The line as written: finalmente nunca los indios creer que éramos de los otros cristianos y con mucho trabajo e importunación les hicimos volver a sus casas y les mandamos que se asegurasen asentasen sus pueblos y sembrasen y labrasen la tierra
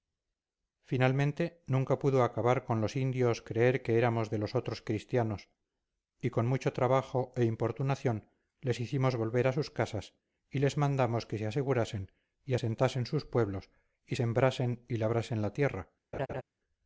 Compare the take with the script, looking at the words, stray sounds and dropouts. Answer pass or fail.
fail